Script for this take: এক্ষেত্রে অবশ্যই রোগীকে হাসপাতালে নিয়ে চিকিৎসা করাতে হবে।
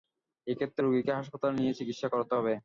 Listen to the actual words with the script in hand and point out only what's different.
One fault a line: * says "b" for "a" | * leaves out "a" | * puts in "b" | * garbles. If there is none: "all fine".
* leaves out "অবশ্যই"